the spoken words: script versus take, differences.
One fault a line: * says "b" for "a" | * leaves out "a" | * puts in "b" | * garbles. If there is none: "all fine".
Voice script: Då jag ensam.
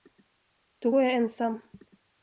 * puts in "går"